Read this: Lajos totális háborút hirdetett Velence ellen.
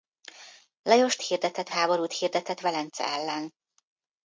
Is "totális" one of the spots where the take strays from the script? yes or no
yes